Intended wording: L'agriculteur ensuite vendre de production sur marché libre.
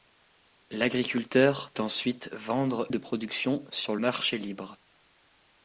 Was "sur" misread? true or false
false